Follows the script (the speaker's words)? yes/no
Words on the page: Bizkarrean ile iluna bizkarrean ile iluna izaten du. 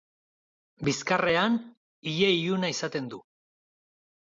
no